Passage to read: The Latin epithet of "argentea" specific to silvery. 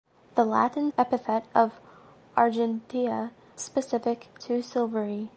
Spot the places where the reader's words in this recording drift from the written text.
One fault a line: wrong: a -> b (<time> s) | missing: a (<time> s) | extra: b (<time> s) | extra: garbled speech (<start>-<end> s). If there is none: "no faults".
no faults